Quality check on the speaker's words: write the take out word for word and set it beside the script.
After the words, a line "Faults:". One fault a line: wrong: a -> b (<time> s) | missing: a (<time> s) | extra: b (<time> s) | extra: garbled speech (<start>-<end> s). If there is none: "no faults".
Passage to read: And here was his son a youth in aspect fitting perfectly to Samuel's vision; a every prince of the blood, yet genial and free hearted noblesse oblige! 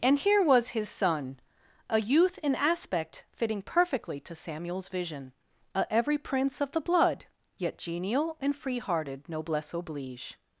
And here was his son a youth in aspect fitting perfectly to Samuel's vision; a every prince of the blood, yet genial and free hearted noblesse oblige!
Faults:
no faults